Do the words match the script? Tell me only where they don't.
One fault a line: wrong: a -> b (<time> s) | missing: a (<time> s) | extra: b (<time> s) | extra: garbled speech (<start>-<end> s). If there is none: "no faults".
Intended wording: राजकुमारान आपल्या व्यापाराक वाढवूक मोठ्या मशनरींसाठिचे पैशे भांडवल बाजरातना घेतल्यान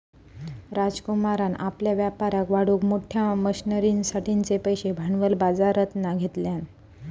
no faults